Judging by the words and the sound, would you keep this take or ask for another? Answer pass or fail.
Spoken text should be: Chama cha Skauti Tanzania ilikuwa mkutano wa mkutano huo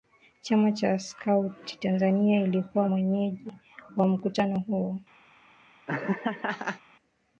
fail